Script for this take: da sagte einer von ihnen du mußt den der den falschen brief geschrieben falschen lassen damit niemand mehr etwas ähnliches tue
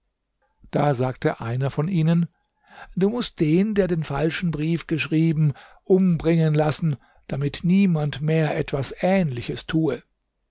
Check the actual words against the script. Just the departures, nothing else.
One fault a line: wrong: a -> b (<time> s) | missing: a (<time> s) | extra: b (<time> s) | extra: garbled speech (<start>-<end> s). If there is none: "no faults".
wrong: falschen -> umbringen (5.8 s)